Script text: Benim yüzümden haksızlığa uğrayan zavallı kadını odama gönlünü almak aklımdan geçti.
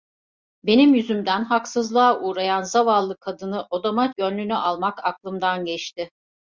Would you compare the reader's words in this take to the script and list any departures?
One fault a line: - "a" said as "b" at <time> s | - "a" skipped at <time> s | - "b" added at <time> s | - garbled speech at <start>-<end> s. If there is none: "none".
none